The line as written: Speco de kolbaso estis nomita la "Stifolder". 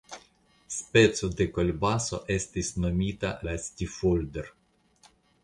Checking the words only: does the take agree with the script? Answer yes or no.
yes